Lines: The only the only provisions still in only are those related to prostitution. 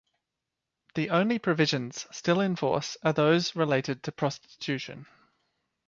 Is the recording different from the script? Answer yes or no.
yes